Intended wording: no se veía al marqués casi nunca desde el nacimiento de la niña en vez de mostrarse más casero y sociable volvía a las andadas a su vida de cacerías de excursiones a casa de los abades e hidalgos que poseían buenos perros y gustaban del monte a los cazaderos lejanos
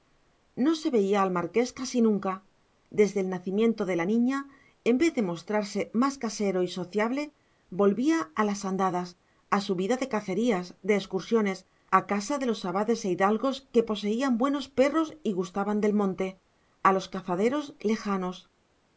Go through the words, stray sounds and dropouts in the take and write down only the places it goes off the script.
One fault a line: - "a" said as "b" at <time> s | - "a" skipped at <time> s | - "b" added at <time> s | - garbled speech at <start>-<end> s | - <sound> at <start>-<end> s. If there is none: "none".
none